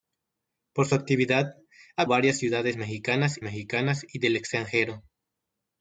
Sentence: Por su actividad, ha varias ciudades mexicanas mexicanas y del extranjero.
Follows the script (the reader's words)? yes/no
yes